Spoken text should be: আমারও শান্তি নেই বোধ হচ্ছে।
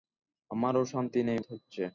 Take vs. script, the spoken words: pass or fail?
fail